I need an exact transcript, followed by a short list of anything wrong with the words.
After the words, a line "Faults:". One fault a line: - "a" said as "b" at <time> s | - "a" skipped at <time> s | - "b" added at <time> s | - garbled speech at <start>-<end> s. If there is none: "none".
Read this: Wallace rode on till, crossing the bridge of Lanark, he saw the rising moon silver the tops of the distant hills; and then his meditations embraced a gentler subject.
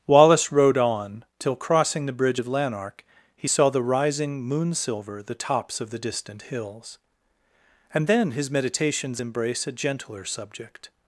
Wallace rode on till, crossing the bridge of Lanark, he saw the rising moon silver the tops of the distant hills; and then his meditations embrace a gentler subject.
Faults:
- "embraced" said as "embrace" at 9.2 s